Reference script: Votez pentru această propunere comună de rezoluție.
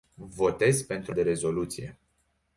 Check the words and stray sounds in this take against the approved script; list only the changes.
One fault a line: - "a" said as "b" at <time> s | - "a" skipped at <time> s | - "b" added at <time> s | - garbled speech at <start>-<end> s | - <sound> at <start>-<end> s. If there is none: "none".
- "această propunere comună" skipped at 1.1 s